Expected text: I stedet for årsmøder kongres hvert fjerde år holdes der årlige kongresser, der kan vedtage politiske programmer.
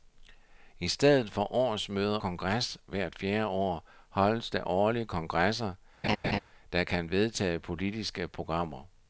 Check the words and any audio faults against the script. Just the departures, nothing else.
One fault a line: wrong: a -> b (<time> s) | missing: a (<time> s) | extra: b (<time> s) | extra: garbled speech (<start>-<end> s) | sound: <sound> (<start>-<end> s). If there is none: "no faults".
sound: laugh (6.0-6.4 s)